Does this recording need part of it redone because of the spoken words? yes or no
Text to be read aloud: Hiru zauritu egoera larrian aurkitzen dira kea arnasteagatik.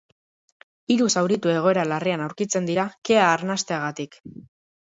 no